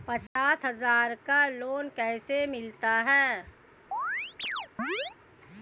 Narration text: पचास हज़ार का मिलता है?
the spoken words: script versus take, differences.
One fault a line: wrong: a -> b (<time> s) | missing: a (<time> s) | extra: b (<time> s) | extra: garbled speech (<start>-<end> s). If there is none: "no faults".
extra: लोन कैसे (1.5 s)